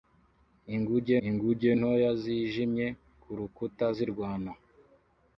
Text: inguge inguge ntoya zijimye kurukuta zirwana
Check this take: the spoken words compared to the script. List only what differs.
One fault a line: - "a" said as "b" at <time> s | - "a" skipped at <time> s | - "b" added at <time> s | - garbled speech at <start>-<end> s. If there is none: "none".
none